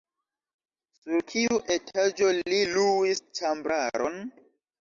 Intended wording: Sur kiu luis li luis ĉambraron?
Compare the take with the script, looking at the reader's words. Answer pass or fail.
fail